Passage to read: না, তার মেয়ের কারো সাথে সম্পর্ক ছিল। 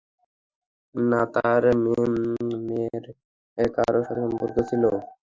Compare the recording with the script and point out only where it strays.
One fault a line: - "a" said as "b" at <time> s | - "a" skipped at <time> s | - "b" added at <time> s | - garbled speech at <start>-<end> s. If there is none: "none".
none